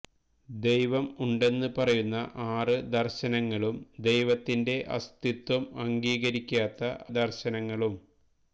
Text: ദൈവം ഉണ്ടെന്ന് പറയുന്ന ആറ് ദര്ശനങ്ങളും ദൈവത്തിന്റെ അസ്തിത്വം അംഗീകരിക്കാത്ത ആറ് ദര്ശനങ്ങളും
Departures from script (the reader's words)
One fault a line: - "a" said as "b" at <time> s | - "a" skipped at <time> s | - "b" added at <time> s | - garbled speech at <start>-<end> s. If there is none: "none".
- "ആറ്" skipped at 6.9 s